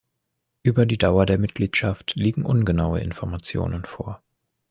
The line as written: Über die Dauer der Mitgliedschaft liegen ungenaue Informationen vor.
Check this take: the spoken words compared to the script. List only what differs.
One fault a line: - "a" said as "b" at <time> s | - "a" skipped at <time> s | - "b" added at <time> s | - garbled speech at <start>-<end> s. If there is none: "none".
none